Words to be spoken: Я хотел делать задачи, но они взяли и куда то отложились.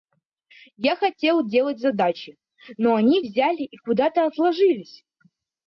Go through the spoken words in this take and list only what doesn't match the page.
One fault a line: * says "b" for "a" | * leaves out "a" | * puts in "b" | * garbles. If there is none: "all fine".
all fine